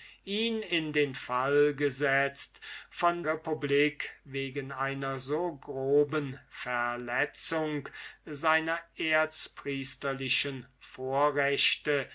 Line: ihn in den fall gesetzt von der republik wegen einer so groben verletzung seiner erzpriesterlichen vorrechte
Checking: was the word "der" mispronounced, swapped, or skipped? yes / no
yes